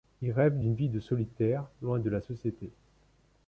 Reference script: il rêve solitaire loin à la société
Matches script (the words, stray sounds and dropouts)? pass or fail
fail